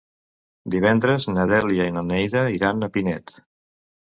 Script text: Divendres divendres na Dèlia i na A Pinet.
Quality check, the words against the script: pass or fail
fail